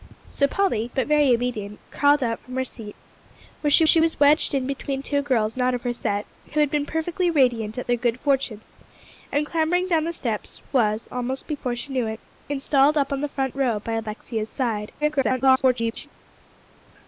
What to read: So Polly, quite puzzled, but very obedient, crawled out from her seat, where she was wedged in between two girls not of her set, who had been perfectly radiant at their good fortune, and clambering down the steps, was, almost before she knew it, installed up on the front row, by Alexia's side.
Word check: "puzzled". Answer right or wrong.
wrong